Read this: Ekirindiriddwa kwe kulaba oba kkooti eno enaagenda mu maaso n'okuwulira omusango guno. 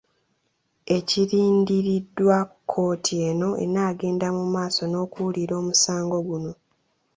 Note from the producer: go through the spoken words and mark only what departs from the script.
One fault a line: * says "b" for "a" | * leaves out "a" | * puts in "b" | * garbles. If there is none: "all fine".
* leaves out "kwe kulaba oba"